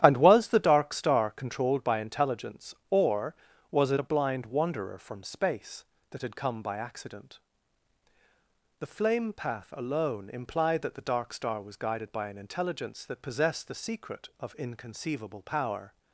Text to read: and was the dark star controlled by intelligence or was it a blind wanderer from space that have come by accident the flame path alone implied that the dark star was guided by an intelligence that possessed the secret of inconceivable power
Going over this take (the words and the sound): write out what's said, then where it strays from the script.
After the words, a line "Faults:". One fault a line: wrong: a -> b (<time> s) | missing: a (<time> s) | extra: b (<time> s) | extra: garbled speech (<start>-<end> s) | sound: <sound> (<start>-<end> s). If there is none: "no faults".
and was the dark star controlled by intelligence or was it a blind wanderer from space that had come by accident the flame path alone implied that the dark star was guided by an intelligence that possessed the secret of inconceivable power
Faults:
wrong: have -> had (6.2 s)